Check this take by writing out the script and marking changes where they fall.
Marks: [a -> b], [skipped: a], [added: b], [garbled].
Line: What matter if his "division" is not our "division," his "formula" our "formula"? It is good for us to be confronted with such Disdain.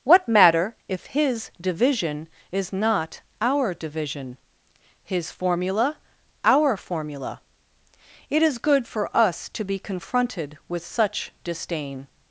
What matter if his "division" is not our "division," his "formula" our "formula"? It is good for us to be confronted with such Disdain.